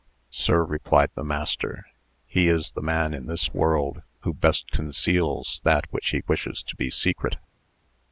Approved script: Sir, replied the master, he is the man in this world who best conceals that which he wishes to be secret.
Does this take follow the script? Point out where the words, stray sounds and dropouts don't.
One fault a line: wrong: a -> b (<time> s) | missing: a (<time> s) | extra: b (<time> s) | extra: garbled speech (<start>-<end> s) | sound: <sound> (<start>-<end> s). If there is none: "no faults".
no faults